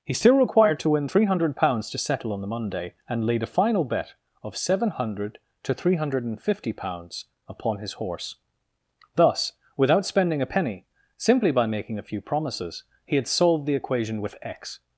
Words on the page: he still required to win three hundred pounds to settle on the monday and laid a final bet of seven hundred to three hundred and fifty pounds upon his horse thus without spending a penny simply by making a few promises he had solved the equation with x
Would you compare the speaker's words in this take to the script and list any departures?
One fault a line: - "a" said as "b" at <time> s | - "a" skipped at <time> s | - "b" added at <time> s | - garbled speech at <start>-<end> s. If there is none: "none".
none